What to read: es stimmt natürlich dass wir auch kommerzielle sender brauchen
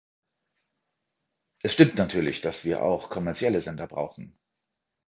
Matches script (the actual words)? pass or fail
pass